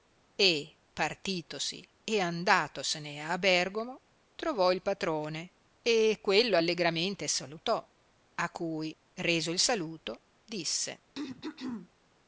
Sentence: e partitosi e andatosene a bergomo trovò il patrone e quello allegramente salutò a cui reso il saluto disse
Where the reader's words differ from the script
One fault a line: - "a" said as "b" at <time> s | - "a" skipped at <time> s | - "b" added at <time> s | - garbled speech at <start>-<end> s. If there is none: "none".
none